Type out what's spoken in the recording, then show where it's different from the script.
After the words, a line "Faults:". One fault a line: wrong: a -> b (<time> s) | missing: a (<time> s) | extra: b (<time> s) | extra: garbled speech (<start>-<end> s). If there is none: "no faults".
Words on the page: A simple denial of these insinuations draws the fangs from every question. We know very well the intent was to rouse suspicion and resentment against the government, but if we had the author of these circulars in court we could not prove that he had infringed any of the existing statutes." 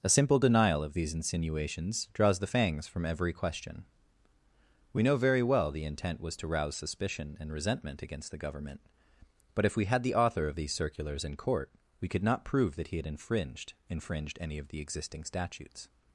A simple denial of these insinuations draws the fangs from every question. We know very well the intent was to rouse suspicion and resentment against the government, but if we had the author of these circulars in court we could not prove that he had infringed infringed any of the existing statutes."
Faults:
extra: infringed (13.9 s)